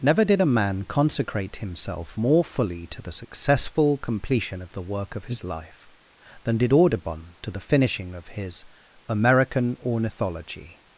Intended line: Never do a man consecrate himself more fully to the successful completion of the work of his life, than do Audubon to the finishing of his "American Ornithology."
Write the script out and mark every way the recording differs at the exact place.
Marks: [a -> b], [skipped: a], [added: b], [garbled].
Never [do -> did] a man consecrate himself more fully to the successful completion of the work of his life, than [do -> did] Audubon to the finishing of his "American Ornithology."